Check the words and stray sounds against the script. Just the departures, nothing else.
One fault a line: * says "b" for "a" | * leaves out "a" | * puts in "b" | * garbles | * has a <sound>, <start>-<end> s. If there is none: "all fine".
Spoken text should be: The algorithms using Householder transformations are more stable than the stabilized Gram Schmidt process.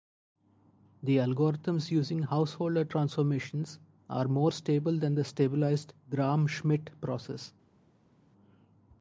all fine